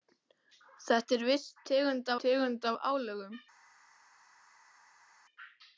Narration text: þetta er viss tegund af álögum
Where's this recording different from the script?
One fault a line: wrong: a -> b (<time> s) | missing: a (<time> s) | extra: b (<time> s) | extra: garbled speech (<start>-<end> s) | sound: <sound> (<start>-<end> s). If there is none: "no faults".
extra: tegund (2.2 s)